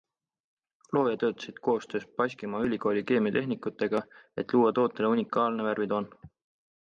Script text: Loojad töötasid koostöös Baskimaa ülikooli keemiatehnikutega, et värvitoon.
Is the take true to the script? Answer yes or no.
no